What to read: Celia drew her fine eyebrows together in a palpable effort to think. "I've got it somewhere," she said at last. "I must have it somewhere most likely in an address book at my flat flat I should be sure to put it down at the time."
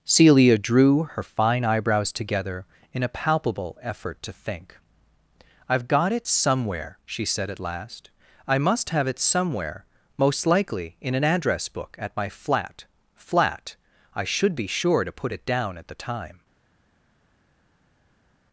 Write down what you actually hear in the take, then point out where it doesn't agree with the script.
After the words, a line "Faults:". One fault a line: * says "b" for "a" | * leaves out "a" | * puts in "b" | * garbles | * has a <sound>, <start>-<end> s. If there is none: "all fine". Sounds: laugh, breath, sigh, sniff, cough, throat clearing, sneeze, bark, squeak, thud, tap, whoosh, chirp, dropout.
Celia drew her fine eyebrows together in a palpable effort to think. "I've got it somewhere," she said at last. "I must have it somewhere most likely in an address book at my flat flat I should be sure to put it down at the time."
Faults:
all fine